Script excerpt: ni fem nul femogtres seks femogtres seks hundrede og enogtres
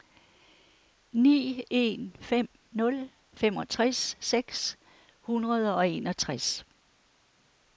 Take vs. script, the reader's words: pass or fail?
fail